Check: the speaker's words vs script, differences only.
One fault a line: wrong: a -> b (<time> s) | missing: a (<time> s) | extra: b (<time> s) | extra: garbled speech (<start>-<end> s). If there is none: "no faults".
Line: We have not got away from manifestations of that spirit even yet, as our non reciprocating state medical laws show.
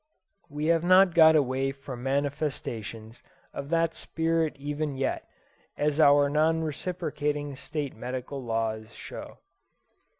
no faults